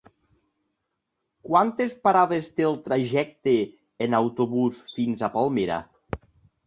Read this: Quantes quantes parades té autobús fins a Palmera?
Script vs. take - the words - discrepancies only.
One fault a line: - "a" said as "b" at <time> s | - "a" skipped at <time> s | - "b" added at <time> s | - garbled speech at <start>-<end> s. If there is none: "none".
- "quantes" skipped at 1.9 s
- "el trajecte en" added at 2.7 s